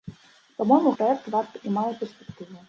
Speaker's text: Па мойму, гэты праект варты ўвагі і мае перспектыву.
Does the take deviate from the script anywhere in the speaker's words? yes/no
yes